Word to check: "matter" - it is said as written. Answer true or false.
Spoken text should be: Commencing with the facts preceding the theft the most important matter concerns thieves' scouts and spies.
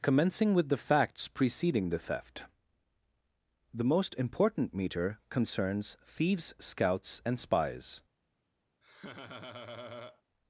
false